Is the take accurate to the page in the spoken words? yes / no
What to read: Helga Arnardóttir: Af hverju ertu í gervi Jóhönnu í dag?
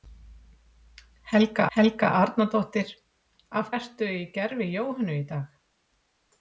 no